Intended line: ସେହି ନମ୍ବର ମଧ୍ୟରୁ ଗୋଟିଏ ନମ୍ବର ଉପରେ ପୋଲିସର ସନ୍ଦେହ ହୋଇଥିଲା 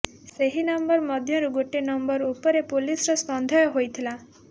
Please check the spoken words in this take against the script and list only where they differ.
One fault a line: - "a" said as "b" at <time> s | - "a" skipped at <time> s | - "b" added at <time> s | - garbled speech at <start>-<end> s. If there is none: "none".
none